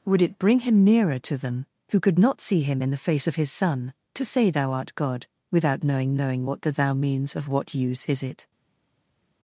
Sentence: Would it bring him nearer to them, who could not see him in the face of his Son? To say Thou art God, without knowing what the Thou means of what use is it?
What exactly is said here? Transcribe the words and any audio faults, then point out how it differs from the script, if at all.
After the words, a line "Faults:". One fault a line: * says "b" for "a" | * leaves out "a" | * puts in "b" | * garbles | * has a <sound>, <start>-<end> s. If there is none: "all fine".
Would it bring him nearer to them, who could not see him in the face of his Son? To say Thou art God, without knowing knowing what the Thou means of what use is it?
Faults:
* puts in "knowing"